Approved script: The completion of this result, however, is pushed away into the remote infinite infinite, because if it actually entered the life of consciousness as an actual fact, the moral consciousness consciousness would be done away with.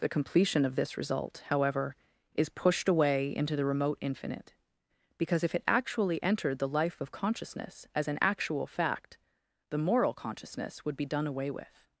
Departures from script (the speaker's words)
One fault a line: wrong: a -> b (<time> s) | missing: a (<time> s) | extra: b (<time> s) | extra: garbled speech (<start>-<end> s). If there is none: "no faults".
missing: infinite (4.5 s)
missing: consciousness (10.8 s)